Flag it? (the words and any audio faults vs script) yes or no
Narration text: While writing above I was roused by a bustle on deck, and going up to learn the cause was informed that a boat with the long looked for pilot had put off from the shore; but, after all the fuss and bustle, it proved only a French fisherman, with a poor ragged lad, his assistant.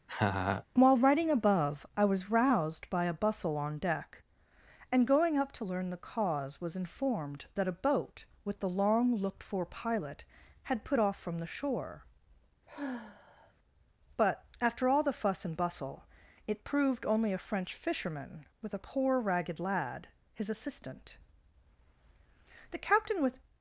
yes